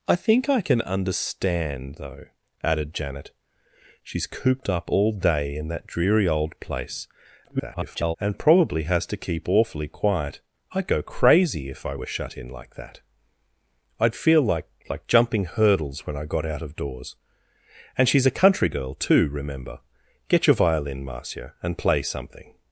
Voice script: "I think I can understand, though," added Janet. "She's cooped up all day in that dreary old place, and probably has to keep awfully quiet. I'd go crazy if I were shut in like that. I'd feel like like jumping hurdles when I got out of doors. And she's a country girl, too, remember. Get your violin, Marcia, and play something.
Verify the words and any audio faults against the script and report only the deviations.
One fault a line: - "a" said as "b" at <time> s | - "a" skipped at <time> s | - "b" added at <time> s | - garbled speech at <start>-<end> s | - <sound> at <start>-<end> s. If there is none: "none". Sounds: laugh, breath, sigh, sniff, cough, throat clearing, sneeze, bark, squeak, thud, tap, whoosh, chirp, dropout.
- garbled speech at 7.4-8.2 s